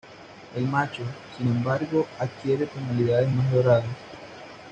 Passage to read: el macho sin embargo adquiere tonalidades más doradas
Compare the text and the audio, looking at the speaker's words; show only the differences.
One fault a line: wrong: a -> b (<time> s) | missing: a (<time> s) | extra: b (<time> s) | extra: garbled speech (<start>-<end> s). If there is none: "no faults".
no faults